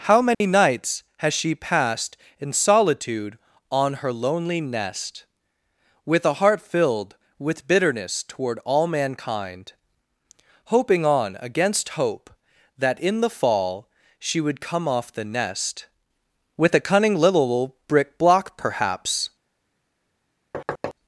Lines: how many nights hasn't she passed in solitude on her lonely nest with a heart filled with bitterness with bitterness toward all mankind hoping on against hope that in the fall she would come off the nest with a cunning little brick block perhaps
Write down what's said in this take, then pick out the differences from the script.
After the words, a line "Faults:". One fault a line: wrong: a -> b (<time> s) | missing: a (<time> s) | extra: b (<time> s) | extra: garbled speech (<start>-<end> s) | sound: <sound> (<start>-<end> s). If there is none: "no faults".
how many nights has she passed in solitude on her lonely nest with a heart filled with bitterness toward all mankind hoping on against hope that in the fall she would come off the nest with a cunning little brick block perhaps
Faults:
sound: dropout (0.3-0.4 s)
wrong: hasn't -> has (1.2 s)
missing: with bitterness (8.2 s)
sound: thud (20.5-20.9 s)